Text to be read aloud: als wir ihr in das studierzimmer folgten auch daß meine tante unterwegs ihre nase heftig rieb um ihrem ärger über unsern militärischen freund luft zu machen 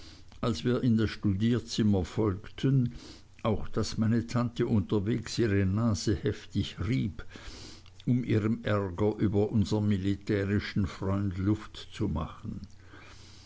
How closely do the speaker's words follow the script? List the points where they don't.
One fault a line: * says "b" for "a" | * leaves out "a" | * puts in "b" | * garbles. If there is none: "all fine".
* leaves out "ihr"